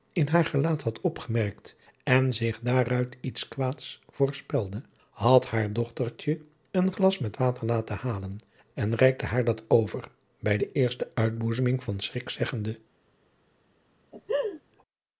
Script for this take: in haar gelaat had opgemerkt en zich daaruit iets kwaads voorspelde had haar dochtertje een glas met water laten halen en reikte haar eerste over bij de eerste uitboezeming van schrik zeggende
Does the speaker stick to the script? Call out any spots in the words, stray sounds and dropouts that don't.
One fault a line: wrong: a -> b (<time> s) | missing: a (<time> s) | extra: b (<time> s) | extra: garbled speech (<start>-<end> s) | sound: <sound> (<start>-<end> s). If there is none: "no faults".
wrong: eerste -> dat (9.4 s)
sound: laugh (14.1-14.6 s)